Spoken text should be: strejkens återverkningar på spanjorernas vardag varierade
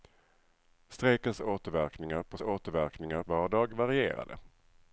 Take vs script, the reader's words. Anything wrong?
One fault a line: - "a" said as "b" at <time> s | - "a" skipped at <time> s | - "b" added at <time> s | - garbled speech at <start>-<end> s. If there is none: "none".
- "spanjorernas" said as "återverkningar" at 2.4 s